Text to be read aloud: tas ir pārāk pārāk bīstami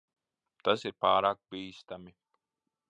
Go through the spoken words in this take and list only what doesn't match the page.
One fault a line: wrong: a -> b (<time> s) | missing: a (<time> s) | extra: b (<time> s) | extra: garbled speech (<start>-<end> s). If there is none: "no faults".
missing: pārāk (1.4 s)